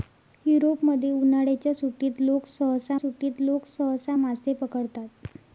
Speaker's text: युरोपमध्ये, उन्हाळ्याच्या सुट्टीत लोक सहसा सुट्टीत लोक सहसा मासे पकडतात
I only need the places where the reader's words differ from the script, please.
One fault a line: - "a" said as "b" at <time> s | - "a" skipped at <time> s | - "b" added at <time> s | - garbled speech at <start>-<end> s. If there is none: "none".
none